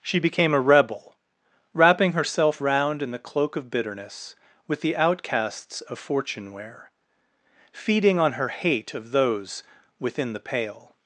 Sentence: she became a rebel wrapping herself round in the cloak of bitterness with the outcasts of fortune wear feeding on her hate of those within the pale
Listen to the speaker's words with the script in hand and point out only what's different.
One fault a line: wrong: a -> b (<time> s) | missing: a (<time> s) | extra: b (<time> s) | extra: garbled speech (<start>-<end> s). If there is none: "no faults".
no faults